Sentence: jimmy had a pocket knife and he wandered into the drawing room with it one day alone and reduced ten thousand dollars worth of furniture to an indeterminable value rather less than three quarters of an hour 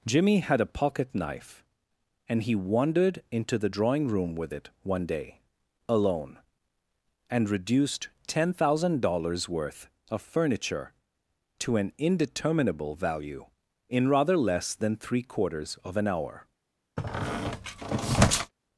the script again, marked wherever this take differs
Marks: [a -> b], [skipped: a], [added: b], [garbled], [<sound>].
jimmy had a pocket knife and he wandered into the drawing room with it one day alone and reduced ten thousand dollars worth of furniture to an indeterminable value [added: in] rather less than three quarters of an hour [squeak]